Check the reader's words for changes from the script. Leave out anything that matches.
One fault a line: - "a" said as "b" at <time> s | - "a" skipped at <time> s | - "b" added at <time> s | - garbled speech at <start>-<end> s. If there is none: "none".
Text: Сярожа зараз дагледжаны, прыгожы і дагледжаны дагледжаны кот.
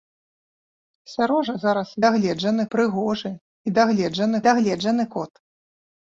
none